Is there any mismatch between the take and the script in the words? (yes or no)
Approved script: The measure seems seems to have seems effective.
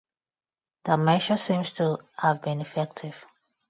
yes